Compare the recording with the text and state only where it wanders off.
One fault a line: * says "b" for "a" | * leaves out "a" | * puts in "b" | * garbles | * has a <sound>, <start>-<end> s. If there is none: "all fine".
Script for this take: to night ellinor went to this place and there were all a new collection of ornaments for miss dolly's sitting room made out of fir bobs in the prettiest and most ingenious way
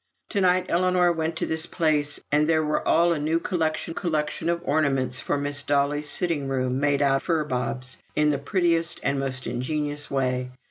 * puts in "collection"
* leaves out "of"